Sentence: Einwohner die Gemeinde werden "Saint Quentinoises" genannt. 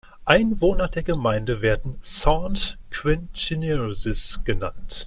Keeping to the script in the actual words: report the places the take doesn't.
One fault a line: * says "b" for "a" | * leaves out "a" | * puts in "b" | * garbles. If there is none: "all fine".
* says "der" for "die"